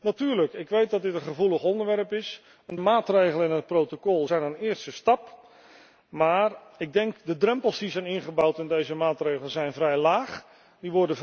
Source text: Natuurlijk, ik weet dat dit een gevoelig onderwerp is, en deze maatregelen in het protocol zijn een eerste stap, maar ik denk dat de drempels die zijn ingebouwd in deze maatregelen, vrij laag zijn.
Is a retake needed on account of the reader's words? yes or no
yes